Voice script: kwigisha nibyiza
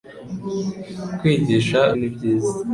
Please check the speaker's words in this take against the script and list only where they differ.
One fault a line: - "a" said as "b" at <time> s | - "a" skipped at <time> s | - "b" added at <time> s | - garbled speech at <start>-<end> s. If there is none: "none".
none